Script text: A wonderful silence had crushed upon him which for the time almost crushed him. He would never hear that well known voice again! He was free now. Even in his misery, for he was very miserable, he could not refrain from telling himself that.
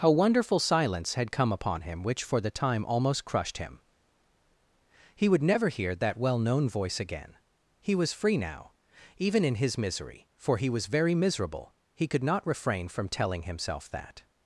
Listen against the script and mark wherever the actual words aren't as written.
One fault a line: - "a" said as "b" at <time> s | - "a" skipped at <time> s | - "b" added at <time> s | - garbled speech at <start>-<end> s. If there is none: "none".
- "crushed" said as "come" at 1.3 s